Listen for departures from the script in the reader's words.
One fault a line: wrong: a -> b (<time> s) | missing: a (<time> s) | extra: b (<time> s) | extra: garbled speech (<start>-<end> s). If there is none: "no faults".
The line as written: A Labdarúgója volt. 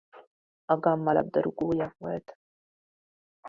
extra: Gamma (0.8 s)